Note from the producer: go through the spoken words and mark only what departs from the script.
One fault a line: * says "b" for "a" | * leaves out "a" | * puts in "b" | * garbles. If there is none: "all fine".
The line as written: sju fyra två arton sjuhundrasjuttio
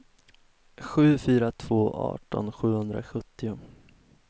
all fine